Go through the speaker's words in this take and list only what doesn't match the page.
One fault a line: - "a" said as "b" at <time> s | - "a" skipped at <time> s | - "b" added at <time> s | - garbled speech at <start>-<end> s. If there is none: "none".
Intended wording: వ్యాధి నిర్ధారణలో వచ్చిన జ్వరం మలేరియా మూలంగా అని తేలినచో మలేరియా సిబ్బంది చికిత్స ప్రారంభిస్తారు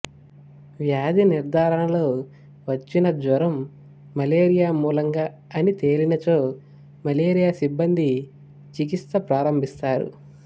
none